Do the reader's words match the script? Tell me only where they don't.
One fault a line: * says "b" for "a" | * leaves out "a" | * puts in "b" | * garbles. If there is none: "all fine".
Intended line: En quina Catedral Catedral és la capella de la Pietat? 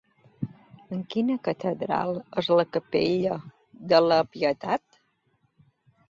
* leaves out "Catedral"